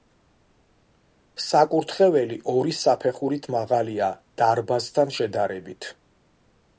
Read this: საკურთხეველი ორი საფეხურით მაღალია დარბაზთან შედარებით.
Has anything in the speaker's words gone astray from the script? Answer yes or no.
no